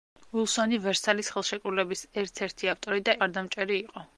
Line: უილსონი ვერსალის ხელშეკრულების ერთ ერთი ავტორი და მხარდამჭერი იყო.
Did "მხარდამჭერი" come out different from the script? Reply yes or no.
no